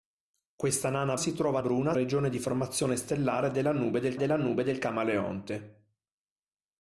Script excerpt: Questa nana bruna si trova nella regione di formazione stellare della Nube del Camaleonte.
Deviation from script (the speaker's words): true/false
true